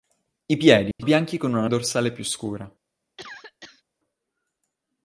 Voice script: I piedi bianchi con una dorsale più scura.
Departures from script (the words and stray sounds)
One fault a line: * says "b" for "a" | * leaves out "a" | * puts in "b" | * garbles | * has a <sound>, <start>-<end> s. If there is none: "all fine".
* has a dropout, 0.9-1.0 s
* has a cough, 3.2-3.8 s